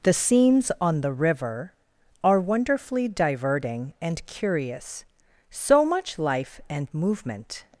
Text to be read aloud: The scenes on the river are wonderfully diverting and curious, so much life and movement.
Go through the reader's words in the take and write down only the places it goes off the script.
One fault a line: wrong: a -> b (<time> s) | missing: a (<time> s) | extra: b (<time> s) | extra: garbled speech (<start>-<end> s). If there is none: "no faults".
no faults